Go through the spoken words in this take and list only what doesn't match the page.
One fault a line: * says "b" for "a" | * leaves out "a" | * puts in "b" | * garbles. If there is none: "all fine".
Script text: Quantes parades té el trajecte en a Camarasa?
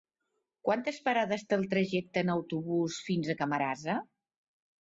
* puts in "autobús fins"